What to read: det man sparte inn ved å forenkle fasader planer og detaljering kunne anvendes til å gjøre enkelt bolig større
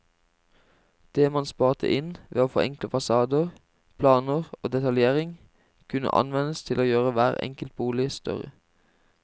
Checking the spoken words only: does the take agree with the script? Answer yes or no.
no